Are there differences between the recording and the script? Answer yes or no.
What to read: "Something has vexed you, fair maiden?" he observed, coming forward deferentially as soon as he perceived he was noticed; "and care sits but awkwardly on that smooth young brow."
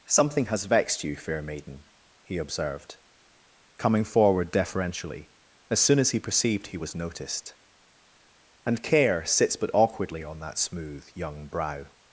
no